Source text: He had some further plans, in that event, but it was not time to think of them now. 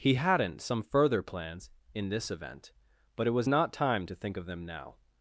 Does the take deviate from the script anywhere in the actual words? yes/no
yes